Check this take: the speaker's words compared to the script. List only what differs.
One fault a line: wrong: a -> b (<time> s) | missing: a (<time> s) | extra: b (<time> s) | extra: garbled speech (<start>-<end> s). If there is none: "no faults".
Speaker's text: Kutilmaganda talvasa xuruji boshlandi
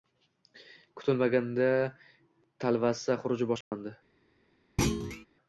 no faults